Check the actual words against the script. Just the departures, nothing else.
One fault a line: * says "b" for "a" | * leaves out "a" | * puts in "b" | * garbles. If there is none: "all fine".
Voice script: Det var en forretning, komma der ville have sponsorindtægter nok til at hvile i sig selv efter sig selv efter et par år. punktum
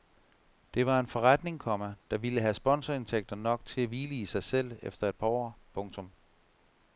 * leaves out "sig selv efter"